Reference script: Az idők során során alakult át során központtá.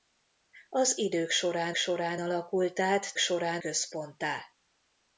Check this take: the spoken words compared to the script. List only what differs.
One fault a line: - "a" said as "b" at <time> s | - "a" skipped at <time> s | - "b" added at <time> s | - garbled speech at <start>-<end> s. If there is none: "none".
none